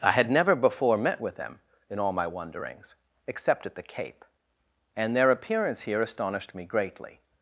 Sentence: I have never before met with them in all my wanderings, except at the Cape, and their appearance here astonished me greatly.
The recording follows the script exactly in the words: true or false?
false